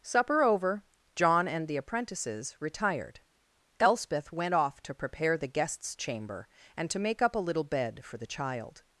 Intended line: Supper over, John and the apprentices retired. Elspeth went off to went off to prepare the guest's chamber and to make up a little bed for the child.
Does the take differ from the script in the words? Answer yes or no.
yes